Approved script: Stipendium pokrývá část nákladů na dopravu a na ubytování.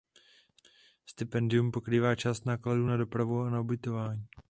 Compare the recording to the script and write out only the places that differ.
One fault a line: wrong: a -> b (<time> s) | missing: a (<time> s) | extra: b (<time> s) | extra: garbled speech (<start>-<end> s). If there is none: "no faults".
no faults